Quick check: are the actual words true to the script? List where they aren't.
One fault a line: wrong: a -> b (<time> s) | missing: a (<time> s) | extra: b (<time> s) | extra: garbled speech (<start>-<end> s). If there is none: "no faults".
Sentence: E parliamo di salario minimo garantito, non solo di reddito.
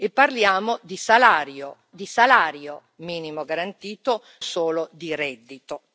extra: di salario (1.9 s)
missing: non (4.2 s)